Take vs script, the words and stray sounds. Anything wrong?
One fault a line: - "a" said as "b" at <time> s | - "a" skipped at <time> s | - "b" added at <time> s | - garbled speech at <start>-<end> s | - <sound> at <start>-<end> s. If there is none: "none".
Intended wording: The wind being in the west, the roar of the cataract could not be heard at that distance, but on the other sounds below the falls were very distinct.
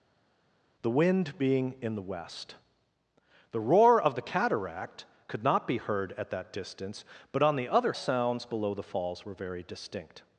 none